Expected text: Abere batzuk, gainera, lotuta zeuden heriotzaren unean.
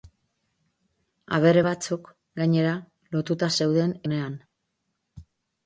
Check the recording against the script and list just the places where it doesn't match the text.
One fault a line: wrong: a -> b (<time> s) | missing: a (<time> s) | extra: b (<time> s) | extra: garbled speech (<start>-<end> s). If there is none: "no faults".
missing: heriotzaren (4.0 s)